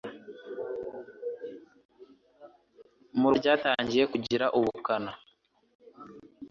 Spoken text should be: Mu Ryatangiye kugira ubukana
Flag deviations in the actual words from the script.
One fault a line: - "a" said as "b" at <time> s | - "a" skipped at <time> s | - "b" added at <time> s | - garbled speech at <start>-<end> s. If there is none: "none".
none